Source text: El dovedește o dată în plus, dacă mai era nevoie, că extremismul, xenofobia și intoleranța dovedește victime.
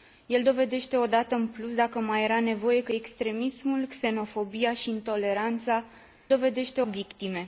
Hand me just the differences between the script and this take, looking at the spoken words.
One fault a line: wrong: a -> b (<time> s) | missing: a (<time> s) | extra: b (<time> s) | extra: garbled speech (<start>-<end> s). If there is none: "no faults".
no faults